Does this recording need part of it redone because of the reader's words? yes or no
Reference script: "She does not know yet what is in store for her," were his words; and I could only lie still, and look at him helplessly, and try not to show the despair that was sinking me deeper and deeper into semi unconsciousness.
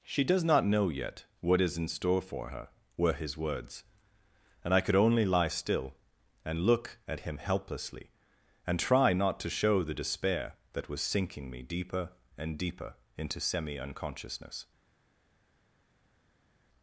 no